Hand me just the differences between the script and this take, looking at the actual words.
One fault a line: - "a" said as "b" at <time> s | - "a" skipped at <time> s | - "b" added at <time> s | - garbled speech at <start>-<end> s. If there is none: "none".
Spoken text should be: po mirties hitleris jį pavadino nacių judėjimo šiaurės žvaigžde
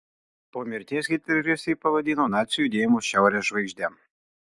none